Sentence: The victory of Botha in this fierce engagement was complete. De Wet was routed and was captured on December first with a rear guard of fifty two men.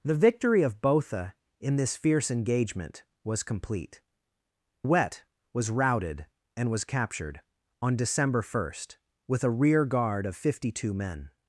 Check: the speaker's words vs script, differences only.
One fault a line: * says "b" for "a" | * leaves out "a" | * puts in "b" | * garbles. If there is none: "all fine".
* leaves out "De"